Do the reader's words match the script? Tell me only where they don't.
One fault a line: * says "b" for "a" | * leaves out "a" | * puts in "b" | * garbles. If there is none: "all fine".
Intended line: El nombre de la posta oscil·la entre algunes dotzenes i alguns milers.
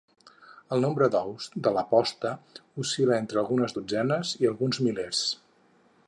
* puts in "d'ous"